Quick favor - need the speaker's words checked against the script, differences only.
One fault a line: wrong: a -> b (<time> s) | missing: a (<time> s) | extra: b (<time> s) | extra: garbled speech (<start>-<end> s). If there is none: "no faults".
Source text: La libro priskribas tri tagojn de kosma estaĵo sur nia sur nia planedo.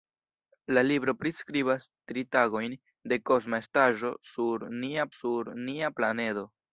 no faults